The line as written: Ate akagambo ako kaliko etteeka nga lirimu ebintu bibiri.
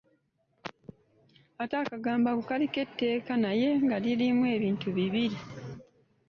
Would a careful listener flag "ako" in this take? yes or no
no